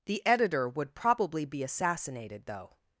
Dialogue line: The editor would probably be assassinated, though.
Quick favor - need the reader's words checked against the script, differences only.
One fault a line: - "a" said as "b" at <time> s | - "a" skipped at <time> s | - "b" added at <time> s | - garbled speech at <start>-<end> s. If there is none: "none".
none